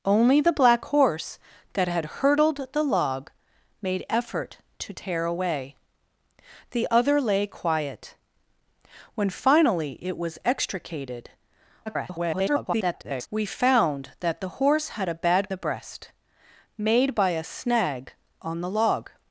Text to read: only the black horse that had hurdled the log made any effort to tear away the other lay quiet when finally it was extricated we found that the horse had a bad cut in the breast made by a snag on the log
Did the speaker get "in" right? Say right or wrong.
wrong